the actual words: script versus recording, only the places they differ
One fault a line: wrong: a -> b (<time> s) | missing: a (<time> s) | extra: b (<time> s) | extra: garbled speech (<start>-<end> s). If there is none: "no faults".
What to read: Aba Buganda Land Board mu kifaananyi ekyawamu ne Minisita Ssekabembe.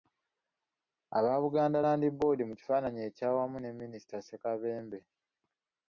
no faults